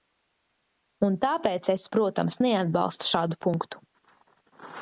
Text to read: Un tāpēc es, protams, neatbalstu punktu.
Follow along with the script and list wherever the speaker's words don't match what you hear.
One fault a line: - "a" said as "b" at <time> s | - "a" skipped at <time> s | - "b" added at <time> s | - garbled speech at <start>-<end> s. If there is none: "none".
- "šādu" added at 3.1 s